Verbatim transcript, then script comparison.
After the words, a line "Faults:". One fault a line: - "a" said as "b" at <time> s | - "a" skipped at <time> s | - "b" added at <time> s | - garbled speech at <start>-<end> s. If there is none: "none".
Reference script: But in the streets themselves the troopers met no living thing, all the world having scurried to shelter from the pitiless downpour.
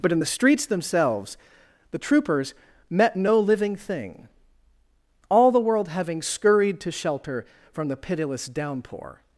But in the streets themselves the troopers met no living thing, all the world having scurried to shelter from the pitiless downpour.
Faults:
none